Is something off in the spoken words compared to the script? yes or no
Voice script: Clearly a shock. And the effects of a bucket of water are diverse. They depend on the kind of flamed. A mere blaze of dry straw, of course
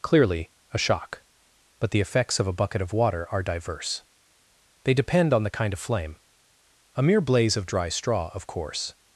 yes